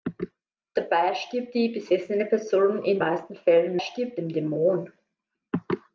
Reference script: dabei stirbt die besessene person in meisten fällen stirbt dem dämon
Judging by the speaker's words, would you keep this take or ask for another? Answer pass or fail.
pass